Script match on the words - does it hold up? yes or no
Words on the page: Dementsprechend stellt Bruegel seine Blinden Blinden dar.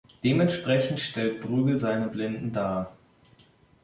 no